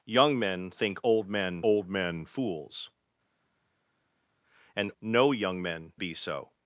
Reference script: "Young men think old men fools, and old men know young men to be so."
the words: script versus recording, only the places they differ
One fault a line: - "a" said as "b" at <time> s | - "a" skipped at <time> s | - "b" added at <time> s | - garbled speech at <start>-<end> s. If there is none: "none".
- "old men" added at 1.6 s
- "old men" skipped at 4.9 s
- "to" skipped at 5.9 s